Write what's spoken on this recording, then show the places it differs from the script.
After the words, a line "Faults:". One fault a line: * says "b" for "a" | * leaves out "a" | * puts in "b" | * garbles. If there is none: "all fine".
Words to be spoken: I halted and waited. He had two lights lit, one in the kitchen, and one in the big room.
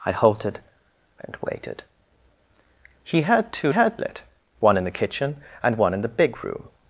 I halted and waited. He had two had lit, one in the kitchen, and one in the big room.
Faults:
* says "had" for "lights"